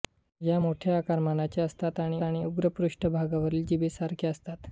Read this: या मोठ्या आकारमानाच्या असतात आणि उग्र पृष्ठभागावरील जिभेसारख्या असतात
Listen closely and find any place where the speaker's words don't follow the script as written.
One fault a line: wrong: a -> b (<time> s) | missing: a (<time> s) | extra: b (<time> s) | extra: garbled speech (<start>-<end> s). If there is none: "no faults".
extra: आणि (2.2 s)